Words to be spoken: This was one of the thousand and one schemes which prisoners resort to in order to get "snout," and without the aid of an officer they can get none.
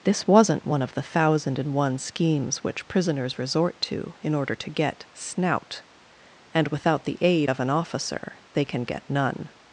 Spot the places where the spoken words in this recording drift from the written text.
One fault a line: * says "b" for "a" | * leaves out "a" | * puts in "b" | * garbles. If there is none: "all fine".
* says "wasn't" for "was"